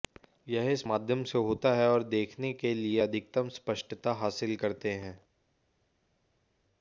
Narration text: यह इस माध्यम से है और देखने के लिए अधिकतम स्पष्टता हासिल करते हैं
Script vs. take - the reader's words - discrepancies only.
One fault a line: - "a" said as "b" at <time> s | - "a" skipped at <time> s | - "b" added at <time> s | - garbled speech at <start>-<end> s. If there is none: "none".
- "होता" added at 1.4 s